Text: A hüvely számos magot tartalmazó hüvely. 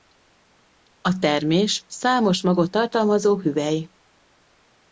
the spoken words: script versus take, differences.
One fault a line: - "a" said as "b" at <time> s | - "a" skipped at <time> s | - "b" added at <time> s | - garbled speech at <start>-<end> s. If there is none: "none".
- "hüvely" said as "termés" at 1.2 s